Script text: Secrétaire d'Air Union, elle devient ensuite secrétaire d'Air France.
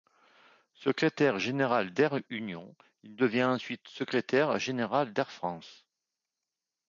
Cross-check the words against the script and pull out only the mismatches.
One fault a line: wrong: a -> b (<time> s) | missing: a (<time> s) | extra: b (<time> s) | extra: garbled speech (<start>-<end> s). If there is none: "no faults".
extra: général (1.4 s)
wrong: elle -> il (3.0 s)
extra: général (4.6 s)